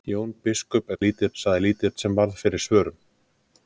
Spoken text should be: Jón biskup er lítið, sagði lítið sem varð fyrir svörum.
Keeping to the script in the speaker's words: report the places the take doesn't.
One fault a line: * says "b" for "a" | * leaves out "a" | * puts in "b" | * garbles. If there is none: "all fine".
all fine